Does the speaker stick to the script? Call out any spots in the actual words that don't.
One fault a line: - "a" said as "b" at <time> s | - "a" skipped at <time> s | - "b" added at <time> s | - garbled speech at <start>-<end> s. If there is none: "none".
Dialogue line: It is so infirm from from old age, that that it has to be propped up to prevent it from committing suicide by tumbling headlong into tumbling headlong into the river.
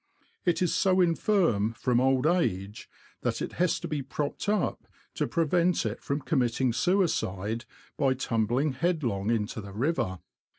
- "from" skipped at 2.0 s
- "that" skipped at 3.4 s
- "tumbling headlong into" skipped at 9.6 s